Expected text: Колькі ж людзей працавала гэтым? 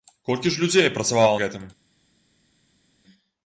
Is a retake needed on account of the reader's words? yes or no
no